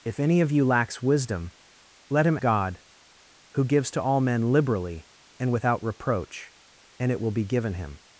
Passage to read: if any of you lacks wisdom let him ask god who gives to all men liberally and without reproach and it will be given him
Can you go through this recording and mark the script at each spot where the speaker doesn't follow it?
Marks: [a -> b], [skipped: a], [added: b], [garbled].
if any of you lacks wisdom let him [skipped: ask] god who gives to all men liberally and without reproach and it will be given him